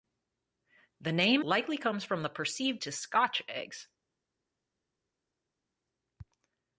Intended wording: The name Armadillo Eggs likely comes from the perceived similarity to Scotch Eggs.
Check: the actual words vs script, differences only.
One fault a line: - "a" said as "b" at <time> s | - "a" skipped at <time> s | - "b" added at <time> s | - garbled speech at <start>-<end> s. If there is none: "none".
- "Armadillo Eggs" skipped at 1.4 s
- "similarity" skipped at 2.8 s